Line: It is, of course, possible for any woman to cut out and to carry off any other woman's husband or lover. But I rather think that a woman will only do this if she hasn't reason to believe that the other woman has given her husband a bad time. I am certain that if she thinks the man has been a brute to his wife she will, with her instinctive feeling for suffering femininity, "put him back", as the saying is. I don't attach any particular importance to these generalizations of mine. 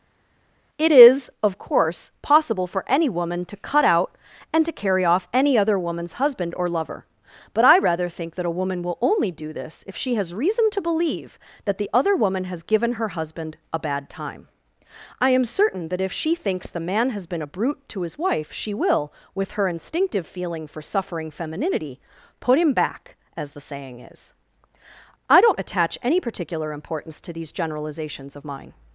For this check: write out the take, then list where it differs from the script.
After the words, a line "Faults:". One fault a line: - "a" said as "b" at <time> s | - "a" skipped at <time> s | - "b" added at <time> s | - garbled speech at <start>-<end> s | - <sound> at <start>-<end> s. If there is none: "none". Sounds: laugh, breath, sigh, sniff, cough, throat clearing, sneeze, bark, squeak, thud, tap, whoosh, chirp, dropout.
It is, of course, possible for any woman to cut out and to carry off any other woman's husband or lover. But I rather think that a woman will only do this if she has reason to believe that the other woman has given her husband a bad time. I am certain that if she thinks the man has been a brute to his wife she will, with her instinctive feeling for suffering femininity, "put him back", as the saying is. I don't attach any particular importance to these generalizations of mine.
Faults:
- "hasn't" said as "has" at 10.2 s